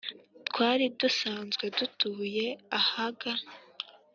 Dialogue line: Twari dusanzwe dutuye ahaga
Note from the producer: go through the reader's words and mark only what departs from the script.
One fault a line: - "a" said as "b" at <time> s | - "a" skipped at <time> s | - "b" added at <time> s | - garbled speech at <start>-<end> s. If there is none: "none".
none